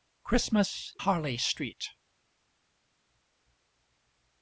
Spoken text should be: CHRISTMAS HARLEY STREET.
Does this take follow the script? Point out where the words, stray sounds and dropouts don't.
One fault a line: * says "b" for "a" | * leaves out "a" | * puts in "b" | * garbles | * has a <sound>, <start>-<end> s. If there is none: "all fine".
all fine